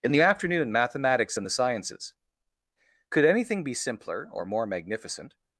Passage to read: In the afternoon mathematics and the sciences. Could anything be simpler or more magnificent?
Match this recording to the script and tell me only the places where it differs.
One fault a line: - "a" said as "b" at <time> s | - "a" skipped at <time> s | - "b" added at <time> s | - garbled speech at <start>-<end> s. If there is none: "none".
none